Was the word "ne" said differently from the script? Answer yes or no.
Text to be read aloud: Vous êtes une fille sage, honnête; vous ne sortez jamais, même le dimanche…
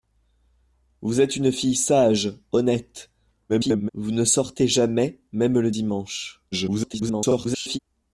no